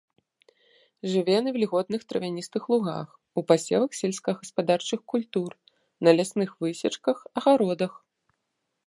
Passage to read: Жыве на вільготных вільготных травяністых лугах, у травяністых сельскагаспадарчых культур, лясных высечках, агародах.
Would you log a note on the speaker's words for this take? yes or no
yes